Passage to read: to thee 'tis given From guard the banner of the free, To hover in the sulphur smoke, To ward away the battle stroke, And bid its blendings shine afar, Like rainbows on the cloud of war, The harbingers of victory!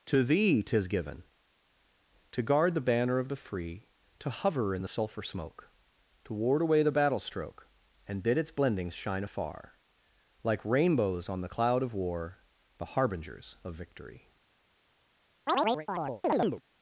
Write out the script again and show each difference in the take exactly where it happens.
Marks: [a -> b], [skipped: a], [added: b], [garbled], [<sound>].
to thee 'tis given [From -> To] guard the banner of the free, To hover in the sulphur smoke, To ward away the battle stroke, And bid its blendings shine afar, Like rainbows on the cloud of war, The harbingers of victory! [chirp]